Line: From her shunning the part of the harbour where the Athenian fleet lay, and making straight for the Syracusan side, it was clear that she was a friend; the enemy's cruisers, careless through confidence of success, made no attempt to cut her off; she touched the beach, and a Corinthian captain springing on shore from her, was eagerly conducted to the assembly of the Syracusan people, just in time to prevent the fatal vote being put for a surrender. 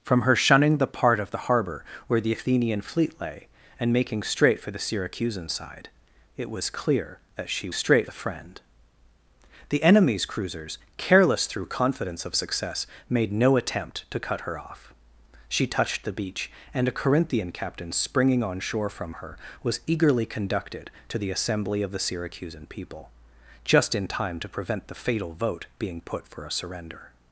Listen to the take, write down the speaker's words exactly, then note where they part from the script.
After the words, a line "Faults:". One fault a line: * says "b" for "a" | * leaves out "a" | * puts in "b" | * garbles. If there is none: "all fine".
From her shunning the part of the harbour where the Athenian fleet lay, and making straight for the Syracusan side, it was clear that she straight a friend; the enemy's cruisers, careless through confidence of success, made no attempt to cut her off; she touched the beach, and a Corinthian captain springing on shore from her, was eagerly conducted to the assembly of the Syracusan people, just in time to prevent the fatal vote being put for a surrender.
Faults:
* says "straight" for "was"